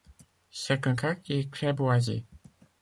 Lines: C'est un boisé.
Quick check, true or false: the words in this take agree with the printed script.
false